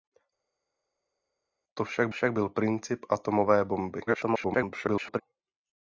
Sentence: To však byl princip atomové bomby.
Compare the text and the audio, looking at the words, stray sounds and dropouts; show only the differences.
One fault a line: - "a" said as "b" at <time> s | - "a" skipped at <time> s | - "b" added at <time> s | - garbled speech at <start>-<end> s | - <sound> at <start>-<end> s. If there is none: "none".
- "však" added at 2.1 s
- garbled speech at 4.1-5.2 s